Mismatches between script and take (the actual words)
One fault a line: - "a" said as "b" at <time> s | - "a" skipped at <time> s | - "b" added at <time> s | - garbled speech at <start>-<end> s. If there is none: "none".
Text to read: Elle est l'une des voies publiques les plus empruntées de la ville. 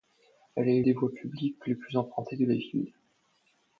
- "l'une" skipped at 0.8 s